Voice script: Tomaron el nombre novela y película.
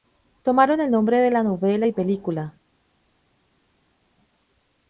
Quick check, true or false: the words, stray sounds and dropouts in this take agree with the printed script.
false